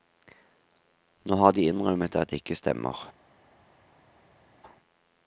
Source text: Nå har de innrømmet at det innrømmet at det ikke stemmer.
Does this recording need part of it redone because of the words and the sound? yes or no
yes